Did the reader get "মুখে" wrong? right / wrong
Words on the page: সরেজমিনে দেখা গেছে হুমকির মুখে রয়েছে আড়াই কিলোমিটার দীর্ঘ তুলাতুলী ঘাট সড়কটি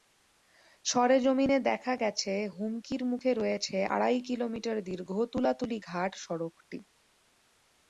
right